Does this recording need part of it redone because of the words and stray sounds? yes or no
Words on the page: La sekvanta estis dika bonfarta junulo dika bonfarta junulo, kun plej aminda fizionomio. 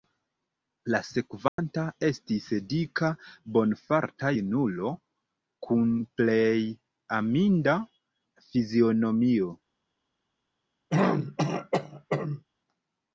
yes